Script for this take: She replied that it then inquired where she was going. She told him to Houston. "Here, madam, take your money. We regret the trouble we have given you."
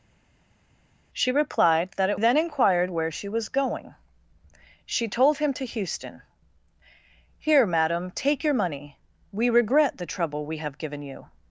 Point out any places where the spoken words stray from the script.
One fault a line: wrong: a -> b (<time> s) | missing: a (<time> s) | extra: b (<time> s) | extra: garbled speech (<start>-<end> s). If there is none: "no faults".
no faults